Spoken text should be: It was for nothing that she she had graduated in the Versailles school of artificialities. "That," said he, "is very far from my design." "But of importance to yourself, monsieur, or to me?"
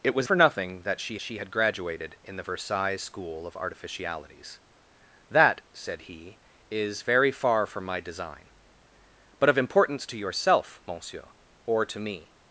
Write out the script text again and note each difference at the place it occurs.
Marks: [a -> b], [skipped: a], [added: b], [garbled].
It was for nothing that she she had graduated in the Versailles school of artificialities. "That," said he, "is very far from my design." "But of importance to yourself, monsieur, or to me?"